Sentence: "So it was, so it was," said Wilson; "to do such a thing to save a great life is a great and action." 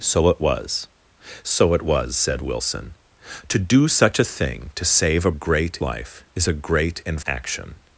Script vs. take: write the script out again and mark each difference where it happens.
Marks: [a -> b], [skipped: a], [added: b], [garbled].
"So it was, so it was," said Wilson; "to do such a thing to save a great life is a great and action."